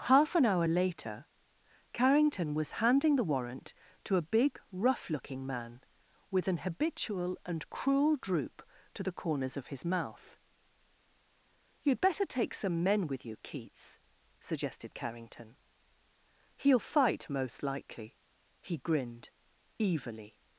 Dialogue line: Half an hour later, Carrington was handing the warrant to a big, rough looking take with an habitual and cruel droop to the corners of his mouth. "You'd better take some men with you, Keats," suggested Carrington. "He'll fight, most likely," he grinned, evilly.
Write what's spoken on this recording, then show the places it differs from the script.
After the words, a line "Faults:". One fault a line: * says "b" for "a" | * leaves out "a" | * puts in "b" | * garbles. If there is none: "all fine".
Half an hour later, Carrington was handing the warrant to a big, rough looking man with an habitual and cruel droop to the corners of his mouth. "You'd better take some men with you, Keats," suggested Carrington. "He'll fight, most likely," he grinned, evilly.
Faults:
* says "man" for "take"